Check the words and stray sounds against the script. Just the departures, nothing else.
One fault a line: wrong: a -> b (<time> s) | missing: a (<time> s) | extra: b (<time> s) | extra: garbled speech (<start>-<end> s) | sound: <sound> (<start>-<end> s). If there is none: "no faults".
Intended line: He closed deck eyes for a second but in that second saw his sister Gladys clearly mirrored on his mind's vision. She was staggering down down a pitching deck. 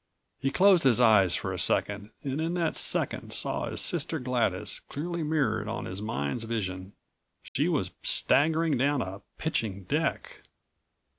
wrong: deck -> his (0.8 s)
wrong: but -> and (2.2 s)
sound: dropout (7.5-7.6 s)
missing: down (9.0 s)